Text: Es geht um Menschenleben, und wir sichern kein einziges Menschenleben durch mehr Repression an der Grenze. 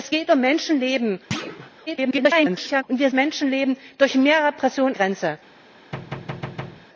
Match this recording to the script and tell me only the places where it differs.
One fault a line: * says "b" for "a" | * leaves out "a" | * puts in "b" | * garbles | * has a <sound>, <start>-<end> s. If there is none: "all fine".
* has a thud, 1.3-1.7 s
* garbles
* leaves out "sichern kein einziges"
* leaves out "an der"
* has a thud, 5.9-6.9 s